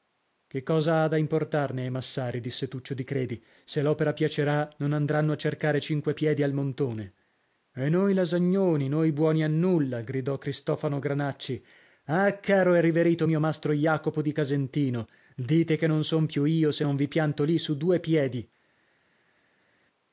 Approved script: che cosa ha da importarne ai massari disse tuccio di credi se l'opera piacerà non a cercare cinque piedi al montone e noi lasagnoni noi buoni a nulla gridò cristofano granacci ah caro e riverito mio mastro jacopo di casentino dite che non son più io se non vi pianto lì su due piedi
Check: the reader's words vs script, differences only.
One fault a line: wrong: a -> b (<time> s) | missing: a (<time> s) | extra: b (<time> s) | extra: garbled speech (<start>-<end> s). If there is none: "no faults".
extra: andranno (4.9 s)